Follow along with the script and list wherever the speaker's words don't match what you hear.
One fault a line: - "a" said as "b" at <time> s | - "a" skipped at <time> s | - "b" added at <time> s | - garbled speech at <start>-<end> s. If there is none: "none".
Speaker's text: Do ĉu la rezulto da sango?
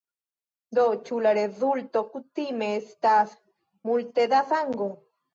- "kutime estas multe" added at 2.1 s